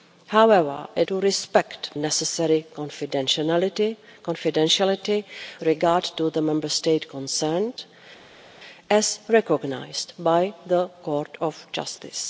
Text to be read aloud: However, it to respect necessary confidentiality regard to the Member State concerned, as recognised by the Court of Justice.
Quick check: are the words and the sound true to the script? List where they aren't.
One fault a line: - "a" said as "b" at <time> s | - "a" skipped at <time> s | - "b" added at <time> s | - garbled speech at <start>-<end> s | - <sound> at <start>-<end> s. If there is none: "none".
none